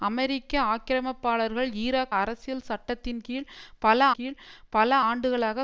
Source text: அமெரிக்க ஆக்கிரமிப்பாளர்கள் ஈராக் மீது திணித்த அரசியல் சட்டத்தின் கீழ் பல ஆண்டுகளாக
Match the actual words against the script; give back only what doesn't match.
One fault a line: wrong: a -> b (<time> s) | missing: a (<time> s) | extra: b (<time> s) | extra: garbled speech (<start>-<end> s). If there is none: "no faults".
wrong: மீது திணித்த அரசியல் சட்டத்தின் -> அரசியல் சட்டத்தின் கீழ் பல (2.2 s)